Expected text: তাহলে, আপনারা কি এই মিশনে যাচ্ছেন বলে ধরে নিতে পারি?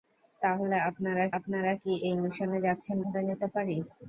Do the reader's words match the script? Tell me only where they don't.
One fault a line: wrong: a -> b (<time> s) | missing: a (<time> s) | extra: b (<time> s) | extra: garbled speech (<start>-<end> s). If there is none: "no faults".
extra: আপনারা (1.4 s)
missing: বলে (3.0 s)